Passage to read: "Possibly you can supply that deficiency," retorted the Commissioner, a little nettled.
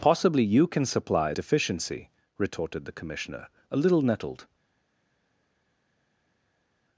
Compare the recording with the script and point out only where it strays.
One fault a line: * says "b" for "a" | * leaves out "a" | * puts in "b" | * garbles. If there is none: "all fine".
* leaves out "that"